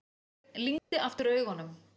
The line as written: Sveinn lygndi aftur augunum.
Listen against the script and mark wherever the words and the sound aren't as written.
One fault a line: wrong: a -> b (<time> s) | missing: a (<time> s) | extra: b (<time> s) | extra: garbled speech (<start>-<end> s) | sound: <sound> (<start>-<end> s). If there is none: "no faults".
sound: dropout (0.8-0.9 s)